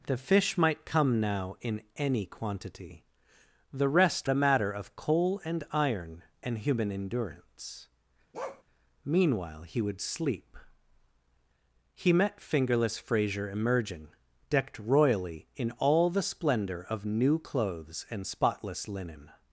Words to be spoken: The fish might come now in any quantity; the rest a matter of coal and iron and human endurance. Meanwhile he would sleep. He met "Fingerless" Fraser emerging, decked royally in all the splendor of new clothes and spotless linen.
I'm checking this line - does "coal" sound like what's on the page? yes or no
yes